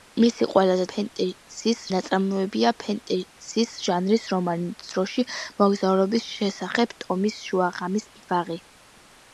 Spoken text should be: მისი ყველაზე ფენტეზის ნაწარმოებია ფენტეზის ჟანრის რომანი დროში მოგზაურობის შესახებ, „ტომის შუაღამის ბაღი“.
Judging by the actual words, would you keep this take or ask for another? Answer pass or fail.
pass